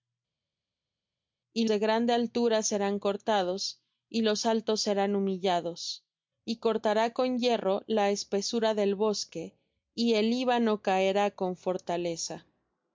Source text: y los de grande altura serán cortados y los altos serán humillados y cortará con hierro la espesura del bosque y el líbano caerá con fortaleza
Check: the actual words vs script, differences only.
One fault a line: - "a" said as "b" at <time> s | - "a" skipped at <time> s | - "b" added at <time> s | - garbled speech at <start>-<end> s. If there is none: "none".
- "los" skipped at 1.6 s